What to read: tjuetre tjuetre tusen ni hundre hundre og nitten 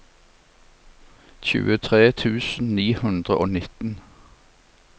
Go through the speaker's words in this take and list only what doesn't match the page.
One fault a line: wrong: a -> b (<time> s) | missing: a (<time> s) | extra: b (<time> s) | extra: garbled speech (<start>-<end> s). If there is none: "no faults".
missing: tjuetre (2.0 s)
missing: hundre (3.4 s)